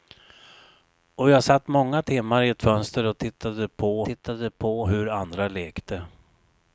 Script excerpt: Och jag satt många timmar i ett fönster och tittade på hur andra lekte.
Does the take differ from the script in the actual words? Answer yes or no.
yes